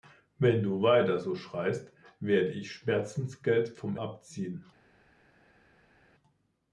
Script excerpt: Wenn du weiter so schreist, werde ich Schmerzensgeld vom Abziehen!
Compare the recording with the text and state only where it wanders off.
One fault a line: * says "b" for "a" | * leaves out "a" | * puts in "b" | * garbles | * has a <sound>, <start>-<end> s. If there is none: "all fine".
all fine